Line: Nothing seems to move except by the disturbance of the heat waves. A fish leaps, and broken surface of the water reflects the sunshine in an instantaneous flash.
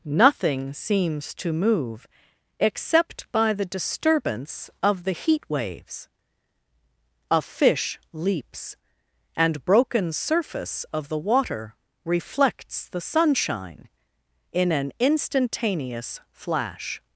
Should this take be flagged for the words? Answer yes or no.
no